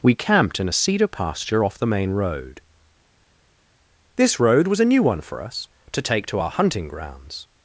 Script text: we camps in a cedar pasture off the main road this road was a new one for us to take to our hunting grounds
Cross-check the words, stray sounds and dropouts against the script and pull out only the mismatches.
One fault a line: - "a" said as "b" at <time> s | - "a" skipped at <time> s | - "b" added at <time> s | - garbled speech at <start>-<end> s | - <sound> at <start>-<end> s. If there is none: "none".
- "camps" said as "camped" at 0.1 s